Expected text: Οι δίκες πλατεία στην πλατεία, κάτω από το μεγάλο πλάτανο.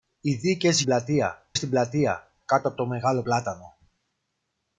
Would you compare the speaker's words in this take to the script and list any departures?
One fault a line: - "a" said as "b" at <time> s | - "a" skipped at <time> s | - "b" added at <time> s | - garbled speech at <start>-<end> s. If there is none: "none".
none